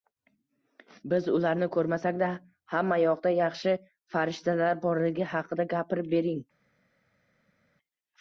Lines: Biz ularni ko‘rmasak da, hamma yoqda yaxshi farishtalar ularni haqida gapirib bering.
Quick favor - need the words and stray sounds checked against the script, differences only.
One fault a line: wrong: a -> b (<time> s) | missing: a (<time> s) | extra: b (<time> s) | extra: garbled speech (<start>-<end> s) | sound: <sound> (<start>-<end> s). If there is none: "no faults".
wrong: ularni -> borligi (4.9 s)